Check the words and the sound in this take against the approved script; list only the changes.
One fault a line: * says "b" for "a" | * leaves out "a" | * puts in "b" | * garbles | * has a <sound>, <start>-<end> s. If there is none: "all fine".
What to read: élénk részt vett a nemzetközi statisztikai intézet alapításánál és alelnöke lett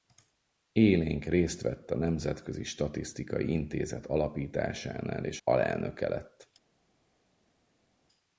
all fine